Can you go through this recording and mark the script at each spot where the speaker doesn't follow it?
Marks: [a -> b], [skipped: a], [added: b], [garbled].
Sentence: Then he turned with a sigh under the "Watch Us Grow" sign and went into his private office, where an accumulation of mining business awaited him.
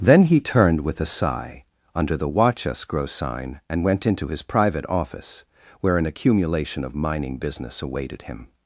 Then he turned with a sigh under the "Watch Us Grow" sign and went into his private office, where an accumulation of mining business awaited him.